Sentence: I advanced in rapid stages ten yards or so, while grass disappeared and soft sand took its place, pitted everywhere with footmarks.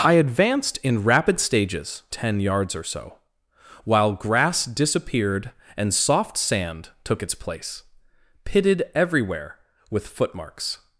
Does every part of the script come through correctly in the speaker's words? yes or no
yes